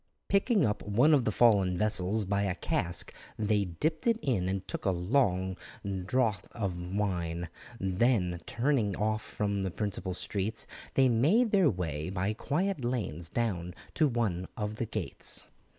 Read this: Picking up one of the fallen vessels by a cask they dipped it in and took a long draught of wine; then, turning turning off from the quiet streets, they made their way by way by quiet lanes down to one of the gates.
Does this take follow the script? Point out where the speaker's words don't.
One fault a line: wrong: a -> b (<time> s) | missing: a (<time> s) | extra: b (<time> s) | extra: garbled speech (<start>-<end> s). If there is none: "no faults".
missing: turning (8.9 s)
wrong: quiet -> principal (9.7 s)
missing: way by (12.3 s)